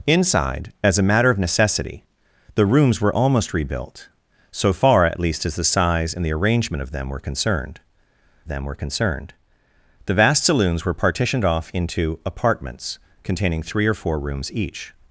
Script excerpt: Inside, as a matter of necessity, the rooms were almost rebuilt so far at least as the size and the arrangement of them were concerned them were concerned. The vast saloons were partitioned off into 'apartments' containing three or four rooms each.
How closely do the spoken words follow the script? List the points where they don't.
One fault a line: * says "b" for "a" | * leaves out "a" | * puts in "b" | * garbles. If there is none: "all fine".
all fine